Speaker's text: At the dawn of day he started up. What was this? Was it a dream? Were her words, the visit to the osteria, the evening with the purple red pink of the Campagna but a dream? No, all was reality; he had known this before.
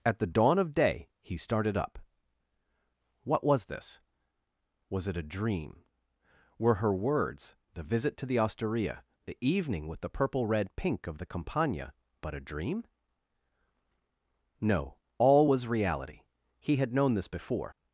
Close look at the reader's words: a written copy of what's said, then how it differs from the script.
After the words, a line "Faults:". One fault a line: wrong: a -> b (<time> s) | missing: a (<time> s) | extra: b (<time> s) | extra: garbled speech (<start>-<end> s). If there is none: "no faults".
At the dawn of day he started up. What was this? Was it a dream? Were her words, the visit to the osteria, the evening with the purple red pink of the Campagna but a dream? No, all was reality; he had known this before.
Faults:
no faults